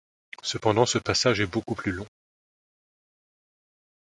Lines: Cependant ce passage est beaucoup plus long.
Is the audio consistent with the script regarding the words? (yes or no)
yes